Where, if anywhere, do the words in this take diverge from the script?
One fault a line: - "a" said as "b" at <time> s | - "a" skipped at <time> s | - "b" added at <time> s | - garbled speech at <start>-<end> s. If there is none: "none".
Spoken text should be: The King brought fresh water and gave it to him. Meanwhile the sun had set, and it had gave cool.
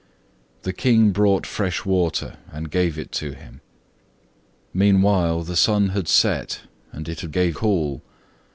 none